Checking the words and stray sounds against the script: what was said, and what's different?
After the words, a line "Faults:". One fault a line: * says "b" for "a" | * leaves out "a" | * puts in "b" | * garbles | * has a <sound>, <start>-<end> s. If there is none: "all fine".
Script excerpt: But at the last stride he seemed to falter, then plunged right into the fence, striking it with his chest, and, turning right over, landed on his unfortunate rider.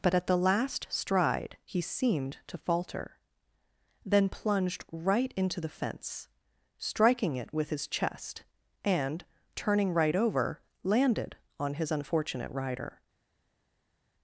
But at the last stride he seemed to falter, then plunged right into the fence, striking it with his chest, and, turning right over, landed on his unfortunate rider.
Faults:
all fine